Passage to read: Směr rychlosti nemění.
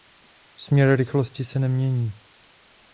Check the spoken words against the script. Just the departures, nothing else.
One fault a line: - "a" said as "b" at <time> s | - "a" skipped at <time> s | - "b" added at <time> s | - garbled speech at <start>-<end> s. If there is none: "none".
- "se" added at 1.4 s